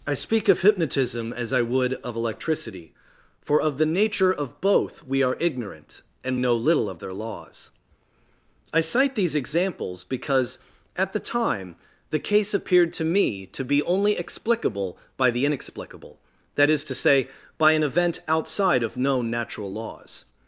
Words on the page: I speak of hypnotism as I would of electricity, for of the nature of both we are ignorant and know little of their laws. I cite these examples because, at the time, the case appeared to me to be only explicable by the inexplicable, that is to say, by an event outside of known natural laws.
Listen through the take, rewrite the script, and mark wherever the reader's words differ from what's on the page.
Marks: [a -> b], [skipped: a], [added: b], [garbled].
I speak of hypnotism as I would of electricity, for of the nature of both we are ignorant and know little of their laws. I cite these examples because, at the time, the case appeared to me to be only explicable by the inexplicable, that is to say, by an event outside of known natural laws.